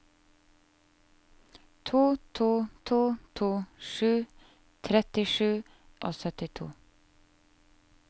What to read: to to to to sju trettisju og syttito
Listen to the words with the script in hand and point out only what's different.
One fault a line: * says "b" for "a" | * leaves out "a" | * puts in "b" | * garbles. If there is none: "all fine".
all fine